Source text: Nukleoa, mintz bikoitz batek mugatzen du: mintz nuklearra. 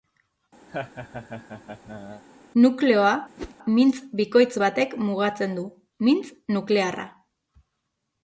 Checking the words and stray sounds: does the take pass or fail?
fail